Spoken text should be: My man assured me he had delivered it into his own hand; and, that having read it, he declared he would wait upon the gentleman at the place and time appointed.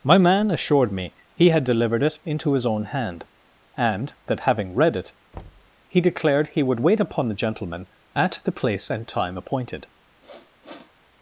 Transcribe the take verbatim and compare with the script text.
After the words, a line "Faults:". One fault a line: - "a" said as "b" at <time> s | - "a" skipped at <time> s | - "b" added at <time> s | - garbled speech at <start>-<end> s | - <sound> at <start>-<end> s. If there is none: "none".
My man assured me he had delivered it into his own hand; and, that having read it, he declared he would wait upon the gentleman at the place and time appointed.
Faults:
- thud at 5.3-5.7 s
- sniff at 10.2-11.0 s